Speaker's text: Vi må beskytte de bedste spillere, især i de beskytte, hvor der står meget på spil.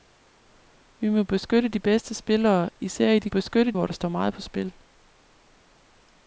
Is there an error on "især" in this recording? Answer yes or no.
no